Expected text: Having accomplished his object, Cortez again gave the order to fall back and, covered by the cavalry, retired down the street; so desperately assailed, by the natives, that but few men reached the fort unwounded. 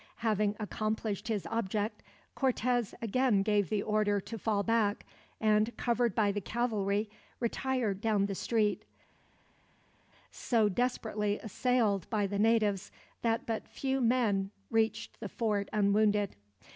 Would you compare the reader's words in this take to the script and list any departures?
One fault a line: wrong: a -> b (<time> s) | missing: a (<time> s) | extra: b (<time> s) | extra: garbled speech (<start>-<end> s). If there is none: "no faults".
no faults